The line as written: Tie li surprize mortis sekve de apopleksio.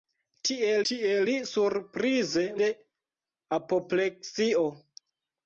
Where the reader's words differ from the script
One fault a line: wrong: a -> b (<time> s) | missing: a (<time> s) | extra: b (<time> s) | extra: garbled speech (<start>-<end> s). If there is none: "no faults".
extra: tie (0.9 s)
missing: mortis sekve (2.4 s)